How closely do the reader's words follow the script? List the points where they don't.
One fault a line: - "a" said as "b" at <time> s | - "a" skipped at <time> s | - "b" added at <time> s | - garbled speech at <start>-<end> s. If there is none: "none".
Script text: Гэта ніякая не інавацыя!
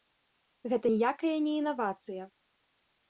none